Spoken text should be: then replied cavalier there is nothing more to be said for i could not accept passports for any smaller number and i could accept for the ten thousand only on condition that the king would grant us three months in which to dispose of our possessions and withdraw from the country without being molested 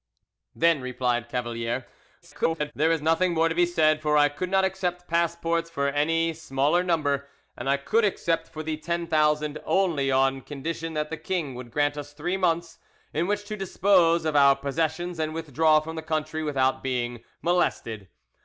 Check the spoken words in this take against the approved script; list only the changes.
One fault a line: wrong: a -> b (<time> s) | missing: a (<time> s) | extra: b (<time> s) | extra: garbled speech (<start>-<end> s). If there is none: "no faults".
extra: garbled speech (2.2-2.7 s)